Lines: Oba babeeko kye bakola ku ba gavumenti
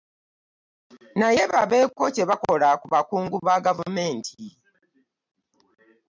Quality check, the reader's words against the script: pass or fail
fail